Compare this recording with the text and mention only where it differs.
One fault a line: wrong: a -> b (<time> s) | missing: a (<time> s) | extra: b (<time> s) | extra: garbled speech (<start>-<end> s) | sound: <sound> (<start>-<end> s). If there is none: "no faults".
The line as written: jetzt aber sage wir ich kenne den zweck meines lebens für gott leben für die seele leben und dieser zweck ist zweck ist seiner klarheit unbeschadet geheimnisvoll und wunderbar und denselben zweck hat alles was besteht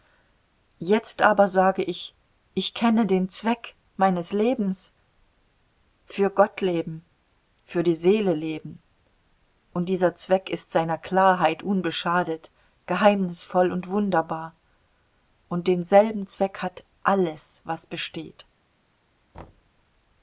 wrong: wir -> ich (1.8 s)
missing: zweck ist (10.7 s)
sound: thud (19.3-19.7 s)